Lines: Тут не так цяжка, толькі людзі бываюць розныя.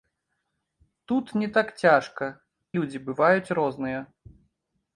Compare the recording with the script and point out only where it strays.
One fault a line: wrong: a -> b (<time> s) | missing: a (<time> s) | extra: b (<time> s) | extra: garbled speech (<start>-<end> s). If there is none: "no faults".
missing: толькі (2.3 s)